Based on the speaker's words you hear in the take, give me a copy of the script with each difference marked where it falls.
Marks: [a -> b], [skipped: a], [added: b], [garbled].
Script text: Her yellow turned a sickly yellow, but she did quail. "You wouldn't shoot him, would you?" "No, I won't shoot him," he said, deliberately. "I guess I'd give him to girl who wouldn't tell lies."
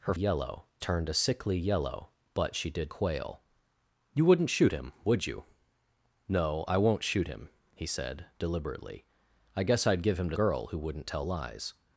Her yellow turned a sickly yellow, but she did quail. "You wouldn't shoot him, would you?" "No, I won't shoot him," he said, deliberately. "I guess I'd give him to girl who wouldn't tell lies."